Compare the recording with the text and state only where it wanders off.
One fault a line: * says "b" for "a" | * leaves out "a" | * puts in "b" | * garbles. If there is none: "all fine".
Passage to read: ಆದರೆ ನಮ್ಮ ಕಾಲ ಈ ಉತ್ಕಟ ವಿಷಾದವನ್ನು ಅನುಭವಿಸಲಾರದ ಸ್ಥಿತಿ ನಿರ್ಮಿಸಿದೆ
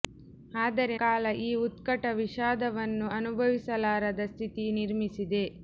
* leaves out "ನಮ್ಮ"